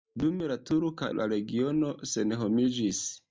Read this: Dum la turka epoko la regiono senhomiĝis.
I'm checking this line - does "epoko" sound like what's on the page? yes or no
no